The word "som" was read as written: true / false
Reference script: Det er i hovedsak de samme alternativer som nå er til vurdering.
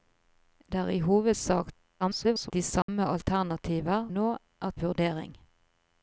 false